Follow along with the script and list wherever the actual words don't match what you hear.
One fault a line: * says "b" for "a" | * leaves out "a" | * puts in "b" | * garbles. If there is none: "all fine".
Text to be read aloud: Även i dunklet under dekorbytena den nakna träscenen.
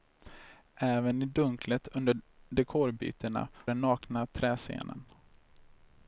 all fine